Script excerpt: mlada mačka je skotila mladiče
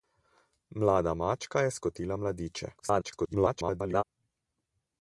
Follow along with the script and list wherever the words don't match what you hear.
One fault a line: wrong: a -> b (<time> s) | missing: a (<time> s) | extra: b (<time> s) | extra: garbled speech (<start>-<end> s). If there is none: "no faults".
extra: garbled speech (2.8-4.0 s)